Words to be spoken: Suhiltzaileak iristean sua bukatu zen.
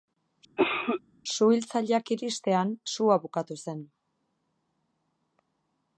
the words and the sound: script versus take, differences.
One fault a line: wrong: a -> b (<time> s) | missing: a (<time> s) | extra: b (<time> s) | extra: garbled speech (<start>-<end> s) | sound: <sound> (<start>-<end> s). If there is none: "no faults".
sound: cough (0.6-1.0 s)